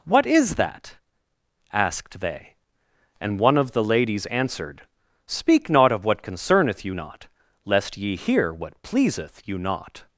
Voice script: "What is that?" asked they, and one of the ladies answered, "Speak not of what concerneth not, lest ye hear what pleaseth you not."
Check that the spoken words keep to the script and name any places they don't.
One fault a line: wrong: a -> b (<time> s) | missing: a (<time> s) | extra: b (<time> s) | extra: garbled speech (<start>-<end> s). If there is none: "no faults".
extra: you (6.8 s)